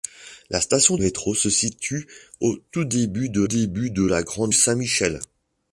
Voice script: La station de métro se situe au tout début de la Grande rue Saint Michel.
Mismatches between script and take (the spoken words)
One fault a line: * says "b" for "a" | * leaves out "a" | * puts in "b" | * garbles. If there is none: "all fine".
* leaves out "de"
* puts in "début de"
* leaves out "rue"